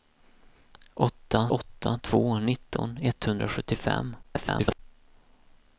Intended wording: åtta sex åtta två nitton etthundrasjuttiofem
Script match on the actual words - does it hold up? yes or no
no